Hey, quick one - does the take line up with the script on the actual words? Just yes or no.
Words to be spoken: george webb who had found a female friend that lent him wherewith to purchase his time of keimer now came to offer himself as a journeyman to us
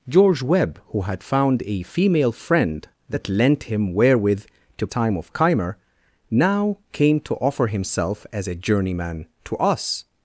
no